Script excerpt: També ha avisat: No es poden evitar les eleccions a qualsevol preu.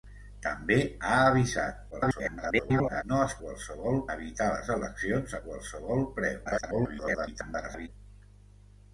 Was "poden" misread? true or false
true